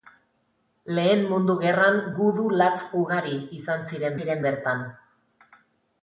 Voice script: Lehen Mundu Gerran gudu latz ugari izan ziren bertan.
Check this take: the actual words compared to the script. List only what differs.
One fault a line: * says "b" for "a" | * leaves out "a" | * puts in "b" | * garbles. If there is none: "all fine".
* puts in "ziren"